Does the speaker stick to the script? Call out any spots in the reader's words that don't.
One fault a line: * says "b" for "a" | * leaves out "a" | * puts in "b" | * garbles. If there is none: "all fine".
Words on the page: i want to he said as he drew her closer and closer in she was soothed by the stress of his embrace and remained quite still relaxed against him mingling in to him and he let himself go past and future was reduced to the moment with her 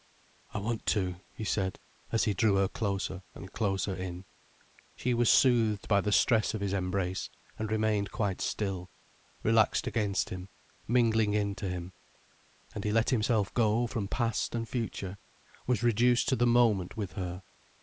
* puts in "from"